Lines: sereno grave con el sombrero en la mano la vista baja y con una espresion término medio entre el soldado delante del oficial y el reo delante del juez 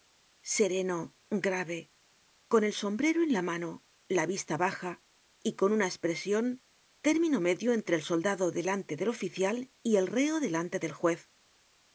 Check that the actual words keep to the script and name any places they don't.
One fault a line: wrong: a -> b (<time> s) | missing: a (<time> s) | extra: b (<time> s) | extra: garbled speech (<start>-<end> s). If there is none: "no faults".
no faults